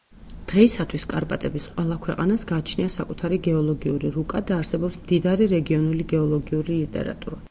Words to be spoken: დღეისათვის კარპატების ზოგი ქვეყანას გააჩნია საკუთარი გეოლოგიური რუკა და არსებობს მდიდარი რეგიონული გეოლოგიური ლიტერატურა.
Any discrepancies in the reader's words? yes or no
yes